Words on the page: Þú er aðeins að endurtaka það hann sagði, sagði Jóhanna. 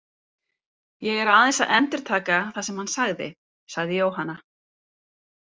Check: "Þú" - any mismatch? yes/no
yes